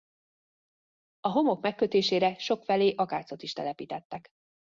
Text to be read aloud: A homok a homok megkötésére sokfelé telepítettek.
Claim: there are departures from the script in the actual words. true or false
true